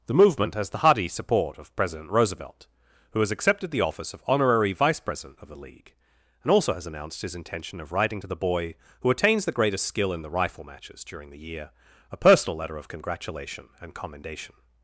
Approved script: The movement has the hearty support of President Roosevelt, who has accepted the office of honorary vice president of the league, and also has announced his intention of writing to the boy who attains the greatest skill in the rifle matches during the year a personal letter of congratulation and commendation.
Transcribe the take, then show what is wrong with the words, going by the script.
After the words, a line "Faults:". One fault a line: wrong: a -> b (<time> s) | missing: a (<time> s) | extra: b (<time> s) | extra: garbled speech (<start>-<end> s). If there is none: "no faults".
The movement has the hearty support of President Roosevelt, who has accepted the office of honorary vice president of the league, and also has announced his intention of writing to the boy who attains the greatest skill in the rifle matches during the year a personal letter of congratulation and commendation.
Faults:
no faults